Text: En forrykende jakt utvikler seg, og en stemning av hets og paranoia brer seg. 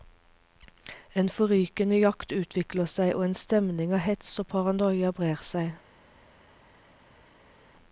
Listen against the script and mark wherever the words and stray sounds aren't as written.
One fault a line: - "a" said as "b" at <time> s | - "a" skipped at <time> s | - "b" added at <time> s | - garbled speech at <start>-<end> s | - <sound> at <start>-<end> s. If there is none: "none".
none